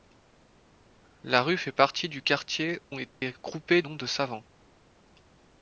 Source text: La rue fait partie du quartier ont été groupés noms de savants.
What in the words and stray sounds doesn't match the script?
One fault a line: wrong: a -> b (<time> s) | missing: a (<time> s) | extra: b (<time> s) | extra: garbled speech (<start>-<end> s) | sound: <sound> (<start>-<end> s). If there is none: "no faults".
sound: dropout (3.1-3.2 s)